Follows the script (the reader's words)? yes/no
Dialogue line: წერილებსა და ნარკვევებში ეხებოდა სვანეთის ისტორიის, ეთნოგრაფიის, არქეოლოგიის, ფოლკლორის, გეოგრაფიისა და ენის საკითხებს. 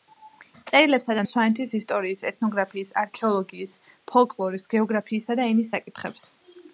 no